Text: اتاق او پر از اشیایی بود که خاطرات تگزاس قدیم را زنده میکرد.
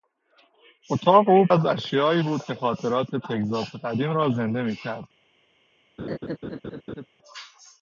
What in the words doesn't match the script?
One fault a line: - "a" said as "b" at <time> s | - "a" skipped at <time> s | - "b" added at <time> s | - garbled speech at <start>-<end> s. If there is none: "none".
- "پر" skipped at 1.5 s